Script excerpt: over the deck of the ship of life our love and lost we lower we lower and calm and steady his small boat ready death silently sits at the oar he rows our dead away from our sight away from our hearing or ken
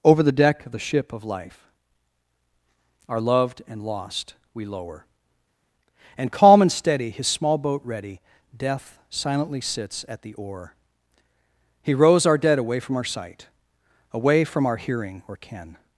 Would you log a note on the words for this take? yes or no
yes